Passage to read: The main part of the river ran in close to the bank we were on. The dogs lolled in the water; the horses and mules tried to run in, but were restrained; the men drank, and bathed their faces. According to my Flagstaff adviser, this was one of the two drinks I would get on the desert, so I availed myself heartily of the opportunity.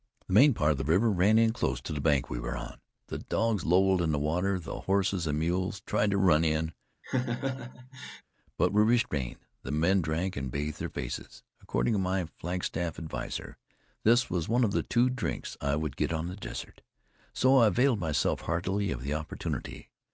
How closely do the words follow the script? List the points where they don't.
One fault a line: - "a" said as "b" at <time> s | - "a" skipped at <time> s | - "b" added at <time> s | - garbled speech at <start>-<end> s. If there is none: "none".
none